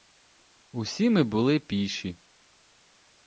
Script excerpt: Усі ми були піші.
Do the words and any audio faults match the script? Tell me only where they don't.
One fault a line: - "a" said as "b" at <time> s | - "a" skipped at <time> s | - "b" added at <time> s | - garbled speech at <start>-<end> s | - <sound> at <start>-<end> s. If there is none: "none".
none